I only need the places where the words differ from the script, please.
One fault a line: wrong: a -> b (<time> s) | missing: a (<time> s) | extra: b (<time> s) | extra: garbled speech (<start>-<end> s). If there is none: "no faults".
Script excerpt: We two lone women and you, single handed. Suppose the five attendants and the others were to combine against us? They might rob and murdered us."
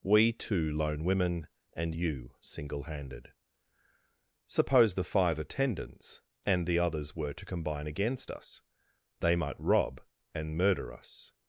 wrong: murdered -> murder (10.6 s)